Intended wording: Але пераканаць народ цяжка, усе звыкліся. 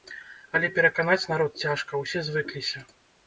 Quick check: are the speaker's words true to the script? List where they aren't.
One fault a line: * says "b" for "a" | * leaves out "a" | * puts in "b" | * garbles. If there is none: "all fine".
all fine